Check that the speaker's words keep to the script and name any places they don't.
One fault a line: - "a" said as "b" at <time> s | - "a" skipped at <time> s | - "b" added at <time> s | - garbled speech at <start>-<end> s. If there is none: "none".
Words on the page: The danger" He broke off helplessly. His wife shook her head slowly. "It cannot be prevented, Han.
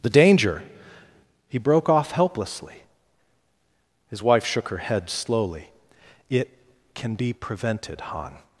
- "cannot" said as "can" at 6.9 s